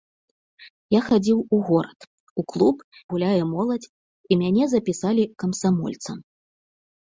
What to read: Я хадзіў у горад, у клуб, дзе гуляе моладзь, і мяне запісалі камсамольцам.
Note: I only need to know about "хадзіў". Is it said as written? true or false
true